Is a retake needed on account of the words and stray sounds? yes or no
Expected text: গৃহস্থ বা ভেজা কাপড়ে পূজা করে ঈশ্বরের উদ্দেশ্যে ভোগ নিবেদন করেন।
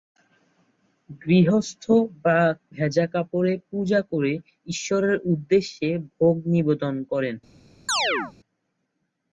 yes